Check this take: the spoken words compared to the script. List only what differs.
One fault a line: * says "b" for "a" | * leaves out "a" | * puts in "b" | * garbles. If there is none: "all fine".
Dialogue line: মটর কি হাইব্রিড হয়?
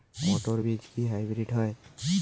* puts in "বীজ"